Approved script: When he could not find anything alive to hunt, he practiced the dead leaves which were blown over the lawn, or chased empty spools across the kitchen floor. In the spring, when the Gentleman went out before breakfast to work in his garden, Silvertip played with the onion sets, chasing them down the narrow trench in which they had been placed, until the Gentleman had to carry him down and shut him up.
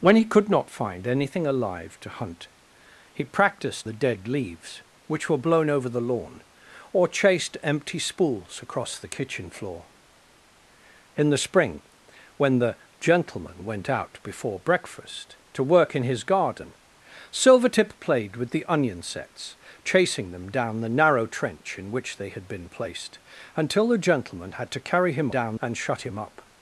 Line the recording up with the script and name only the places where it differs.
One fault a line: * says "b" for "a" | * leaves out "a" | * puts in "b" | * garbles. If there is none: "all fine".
all fine